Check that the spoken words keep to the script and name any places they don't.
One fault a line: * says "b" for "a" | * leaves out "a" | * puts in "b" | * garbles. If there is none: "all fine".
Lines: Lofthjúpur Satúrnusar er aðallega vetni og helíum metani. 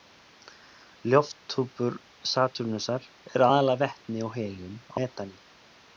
all fine